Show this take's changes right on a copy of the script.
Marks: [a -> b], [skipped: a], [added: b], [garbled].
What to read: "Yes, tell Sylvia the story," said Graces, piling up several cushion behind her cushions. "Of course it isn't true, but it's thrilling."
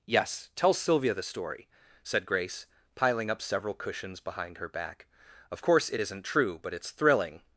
"Yes, tell Sylvia the story," said [Graces, -> Grace] piling up several [cushion -> cushions] behind her [cushions. -> back] "Of course it isn't true, but it's thrilling."